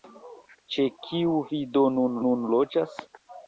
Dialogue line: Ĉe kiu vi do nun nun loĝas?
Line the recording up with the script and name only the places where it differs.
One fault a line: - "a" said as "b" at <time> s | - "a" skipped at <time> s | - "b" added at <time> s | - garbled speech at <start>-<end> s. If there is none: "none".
none